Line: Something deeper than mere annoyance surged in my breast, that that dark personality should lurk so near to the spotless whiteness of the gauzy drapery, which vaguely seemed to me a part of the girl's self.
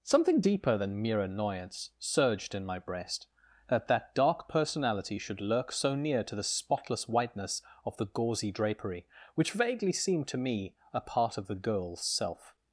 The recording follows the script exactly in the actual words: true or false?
true